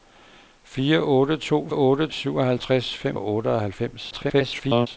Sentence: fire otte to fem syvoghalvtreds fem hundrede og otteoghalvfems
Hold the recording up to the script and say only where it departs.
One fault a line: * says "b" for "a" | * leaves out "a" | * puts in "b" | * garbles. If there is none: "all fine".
* says "otte" for "fem"
* leaves out "hundrede"
* garbles